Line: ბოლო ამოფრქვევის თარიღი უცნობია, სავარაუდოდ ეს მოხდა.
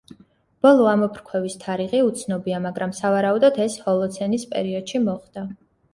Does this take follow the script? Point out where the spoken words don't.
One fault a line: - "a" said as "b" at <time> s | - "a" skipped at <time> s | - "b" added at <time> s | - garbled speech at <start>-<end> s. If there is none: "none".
- "მაგრამ" added at 2.6 s
- "ჰოლოცენის პერიოდში" added at 3.9 s